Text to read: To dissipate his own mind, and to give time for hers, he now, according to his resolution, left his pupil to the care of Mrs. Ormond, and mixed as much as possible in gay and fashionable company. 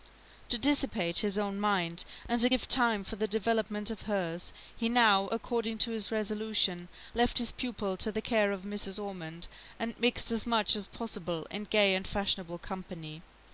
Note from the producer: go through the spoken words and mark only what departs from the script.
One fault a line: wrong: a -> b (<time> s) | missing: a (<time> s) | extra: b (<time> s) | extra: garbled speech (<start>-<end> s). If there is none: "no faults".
extra: the development of (3.2 s)